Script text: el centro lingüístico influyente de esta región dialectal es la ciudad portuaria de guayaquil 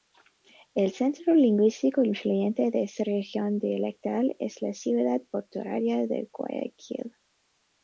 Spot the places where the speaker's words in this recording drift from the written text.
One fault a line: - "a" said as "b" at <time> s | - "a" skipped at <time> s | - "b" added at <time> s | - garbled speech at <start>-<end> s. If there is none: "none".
none